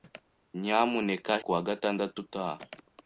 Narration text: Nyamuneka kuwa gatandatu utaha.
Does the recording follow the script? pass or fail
pass